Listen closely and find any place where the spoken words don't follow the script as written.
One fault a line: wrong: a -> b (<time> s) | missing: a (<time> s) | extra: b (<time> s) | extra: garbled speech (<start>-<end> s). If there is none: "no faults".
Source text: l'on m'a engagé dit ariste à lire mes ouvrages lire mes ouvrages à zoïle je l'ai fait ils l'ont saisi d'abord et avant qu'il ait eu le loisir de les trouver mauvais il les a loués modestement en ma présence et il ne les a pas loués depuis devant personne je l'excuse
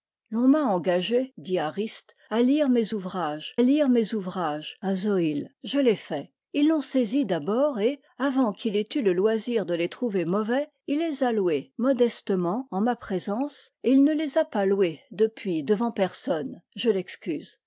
no faults